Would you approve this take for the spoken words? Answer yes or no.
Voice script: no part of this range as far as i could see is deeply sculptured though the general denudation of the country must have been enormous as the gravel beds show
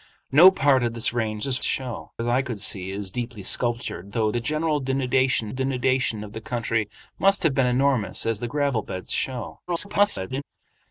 no